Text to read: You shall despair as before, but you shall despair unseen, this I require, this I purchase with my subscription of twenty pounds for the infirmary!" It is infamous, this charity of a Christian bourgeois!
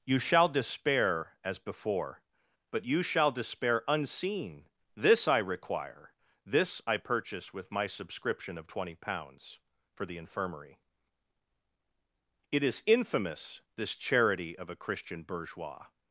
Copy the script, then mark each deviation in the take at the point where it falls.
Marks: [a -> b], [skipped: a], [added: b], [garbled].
You shall despair as before, but you shall despair unseen, this I require, this I purchase with my subscription of twenty pounds for the infirmary!" It is infamous, this charity of a Christian bourgeois!